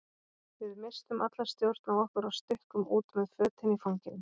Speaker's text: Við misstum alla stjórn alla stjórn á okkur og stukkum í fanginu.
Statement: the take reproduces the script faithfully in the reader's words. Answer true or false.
false